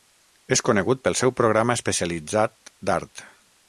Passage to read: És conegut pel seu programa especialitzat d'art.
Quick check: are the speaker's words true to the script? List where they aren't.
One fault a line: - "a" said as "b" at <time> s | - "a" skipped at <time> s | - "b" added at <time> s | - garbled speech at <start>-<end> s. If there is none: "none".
none